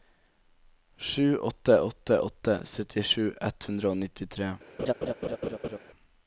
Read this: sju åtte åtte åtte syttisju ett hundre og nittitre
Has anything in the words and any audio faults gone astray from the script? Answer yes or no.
yes